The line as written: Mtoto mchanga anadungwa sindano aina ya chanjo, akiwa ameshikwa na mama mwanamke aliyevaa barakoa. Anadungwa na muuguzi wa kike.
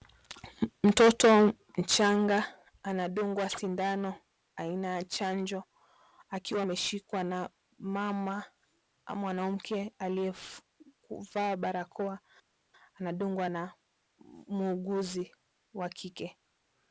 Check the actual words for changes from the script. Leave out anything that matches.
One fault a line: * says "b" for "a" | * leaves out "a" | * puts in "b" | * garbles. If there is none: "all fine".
all fine